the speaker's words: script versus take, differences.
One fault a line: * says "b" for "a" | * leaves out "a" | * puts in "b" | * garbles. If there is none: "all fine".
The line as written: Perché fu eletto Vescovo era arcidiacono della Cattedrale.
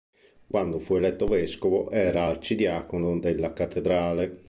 * says "Quando" for "Perché"